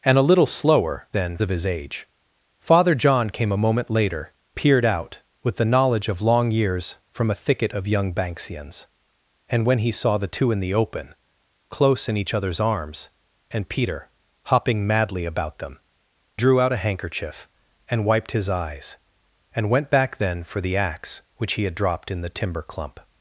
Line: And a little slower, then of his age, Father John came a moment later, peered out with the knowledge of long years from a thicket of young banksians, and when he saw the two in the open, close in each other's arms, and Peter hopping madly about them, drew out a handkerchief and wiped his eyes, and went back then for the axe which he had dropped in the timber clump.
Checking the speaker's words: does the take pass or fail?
pass